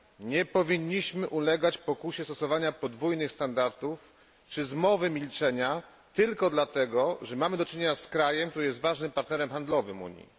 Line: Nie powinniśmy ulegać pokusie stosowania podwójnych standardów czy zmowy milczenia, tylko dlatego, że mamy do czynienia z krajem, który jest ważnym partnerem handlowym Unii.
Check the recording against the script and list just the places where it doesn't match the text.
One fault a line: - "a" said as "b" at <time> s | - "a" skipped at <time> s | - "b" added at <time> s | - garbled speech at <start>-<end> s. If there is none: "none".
none